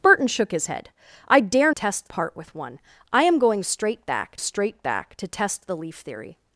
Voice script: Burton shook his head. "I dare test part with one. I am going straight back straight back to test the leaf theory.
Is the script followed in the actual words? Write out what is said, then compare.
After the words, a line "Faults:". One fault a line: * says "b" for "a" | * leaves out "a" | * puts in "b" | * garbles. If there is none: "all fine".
Burton shook his head. "I dare test part with one. I am going straight back straight back to test the leaf theory.
Faults:
all fine